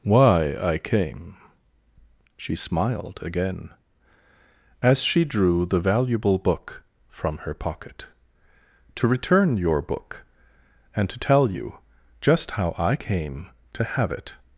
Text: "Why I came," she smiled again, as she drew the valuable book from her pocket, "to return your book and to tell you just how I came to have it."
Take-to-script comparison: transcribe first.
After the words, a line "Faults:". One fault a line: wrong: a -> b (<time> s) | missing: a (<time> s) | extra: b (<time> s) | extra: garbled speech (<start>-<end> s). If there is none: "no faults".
"Why I came," she smiled again, as she drew the valuable book from her pocket, "to return your book and to tell you just how I came to have it."
Faults:
no faults